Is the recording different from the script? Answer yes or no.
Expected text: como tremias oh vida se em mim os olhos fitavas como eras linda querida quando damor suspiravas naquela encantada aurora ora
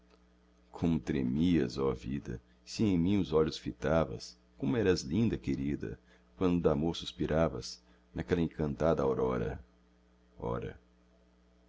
no